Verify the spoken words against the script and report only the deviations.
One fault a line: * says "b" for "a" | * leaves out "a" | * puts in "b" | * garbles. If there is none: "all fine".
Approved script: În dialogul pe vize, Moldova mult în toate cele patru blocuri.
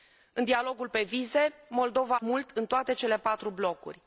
all fine